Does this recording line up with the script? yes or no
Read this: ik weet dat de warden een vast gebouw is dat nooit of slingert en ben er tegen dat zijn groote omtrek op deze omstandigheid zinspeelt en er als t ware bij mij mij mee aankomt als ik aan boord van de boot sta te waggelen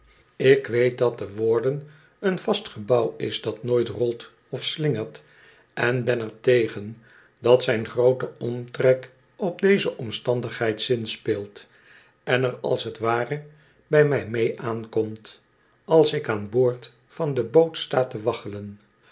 no